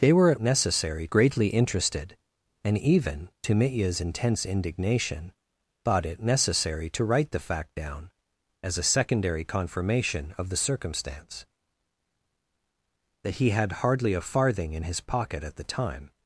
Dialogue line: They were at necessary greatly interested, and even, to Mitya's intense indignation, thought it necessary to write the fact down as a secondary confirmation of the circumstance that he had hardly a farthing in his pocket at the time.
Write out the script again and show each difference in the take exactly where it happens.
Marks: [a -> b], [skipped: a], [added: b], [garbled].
They were at necessary greatly interested, and even, to Mitya's intense indignation, thought it necessary to write the fact down as a secondary confirmation of the circumstance that he had hardly a farthing in his pocket at the time.